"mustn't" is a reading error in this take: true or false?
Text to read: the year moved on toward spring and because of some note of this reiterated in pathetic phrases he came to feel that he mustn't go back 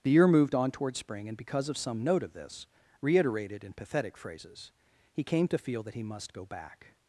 true